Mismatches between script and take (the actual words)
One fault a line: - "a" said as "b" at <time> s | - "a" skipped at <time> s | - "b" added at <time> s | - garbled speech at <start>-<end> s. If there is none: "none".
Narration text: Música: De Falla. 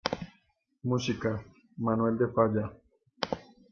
- "Manuel" added at 1.8 s